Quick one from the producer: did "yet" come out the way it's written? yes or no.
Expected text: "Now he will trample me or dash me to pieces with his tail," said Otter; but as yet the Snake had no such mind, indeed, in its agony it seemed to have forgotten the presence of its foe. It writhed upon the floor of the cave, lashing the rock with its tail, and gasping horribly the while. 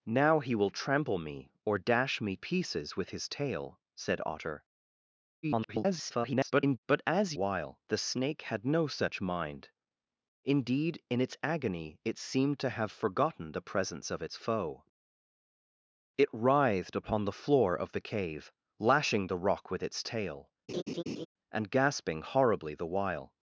no